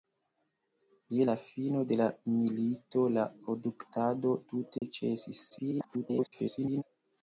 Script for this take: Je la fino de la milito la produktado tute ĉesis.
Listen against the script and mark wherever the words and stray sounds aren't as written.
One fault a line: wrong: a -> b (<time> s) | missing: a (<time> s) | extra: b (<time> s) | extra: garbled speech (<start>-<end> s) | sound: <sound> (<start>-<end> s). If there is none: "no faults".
sound: dropout (4.8-4.8 s)
extra: garbled speech (5.5-6.8 s)